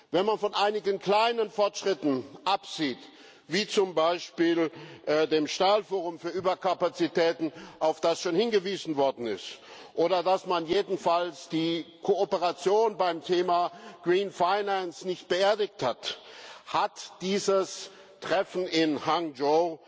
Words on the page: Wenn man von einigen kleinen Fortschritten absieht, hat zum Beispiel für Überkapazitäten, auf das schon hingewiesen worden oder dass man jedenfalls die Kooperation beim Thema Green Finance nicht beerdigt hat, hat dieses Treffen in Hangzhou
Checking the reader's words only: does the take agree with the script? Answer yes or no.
no